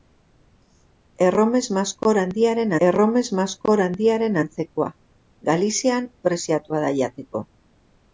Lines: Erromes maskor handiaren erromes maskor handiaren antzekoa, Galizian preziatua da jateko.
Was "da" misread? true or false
false